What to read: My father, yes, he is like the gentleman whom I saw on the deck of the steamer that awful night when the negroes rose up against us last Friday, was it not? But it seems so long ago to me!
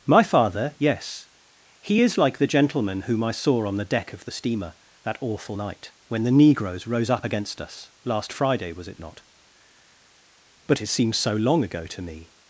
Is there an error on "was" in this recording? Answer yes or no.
no